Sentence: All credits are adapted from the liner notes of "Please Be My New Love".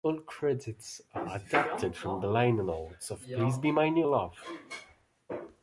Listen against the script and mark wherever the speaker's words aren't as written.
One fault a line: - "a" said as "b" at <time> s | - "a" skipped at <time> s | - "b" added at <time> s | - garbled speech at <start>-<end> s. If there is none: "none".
none